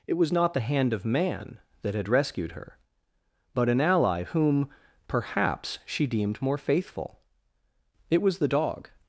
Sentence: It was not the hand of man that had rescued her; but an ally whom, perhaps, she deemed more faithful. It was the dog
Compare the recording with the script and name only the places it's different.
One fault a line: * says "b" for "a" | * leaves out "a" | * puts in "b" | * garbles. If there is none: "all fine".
all fine